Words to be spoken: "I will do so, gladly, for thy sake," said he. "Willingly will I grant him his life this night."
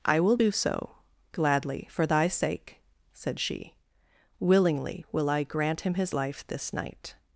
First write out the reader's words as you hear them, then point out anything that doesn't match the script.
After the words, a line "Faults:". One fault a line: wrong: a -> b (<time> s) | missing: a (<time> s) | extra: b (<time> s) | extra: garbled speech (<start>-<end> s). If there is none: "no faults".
"I will do so, gladly, for thy sake," said she. "Willingly will I grant him his life this night."
Faults:
wrong: he -> she (3.4 s)